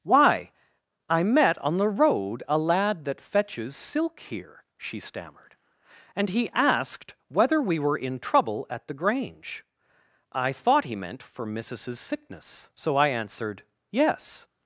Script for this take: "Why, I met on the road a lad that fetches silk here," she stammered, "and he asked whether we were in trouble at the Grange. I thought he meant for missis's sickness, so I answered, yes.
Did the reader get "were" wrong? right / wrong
right